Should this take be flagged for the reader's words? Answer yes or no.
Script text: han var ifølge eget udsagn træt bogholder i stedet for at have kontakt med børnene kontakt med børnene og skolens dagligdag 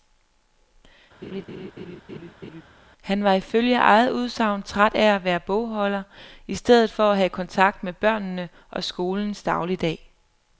yes